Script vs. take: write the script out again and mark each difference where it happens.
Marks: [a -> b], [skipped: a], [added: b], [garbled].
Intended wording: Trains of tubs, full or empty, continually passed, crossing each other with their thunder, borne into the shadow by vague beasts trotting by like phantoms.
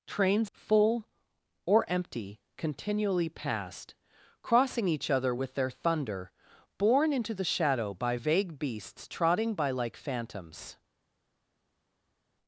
Trains [skipped: of tubs,] full or empty, continually passed, crossing each other with their thunder, borne into the shadow by vague beasts trotting by like phantoms.